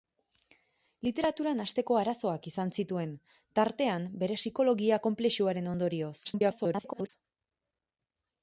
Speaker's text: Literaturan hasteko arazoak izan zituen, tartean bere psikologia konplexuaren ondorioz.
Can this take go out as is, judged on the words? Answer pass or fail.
fail